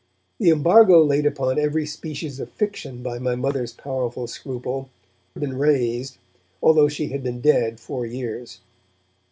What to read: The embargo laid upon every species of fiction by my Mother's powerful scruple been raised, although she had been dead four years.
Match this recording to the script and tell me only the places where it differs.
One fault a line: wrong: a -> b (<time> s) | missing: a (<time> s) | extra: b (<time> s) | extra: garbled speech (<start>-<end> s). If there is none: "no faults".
no faults